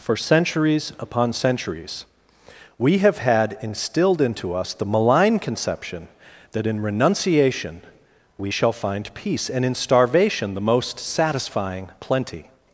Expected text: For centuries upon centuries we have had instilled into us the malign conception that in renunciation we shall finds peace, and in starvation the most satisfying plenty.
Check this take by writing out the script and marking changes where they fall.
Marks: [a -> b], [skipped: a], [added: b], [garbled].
For centuries upon centuries we have had instilled into us the malign conception that in renunciation we shall [finds -> find] peace, and in starvation the most satisfying plenty.